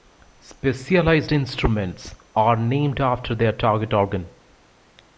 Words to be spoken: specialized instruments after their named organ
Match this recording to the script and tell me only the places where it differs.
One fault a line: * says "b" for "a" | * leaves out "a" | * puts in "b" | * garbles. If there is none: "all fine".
* puts in "are named"
* says "target" for "named"